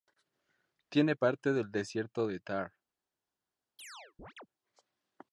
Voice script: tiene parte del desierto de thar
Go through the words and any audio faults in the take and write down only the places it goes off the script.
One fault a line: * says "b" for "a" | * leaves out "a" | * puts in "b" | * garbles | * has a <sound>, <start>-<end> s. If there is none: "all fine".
* has a chirp, 3.8-4.5 s